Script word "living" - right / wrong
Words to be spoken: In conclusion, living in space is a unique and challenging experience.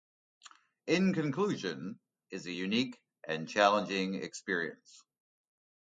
wrong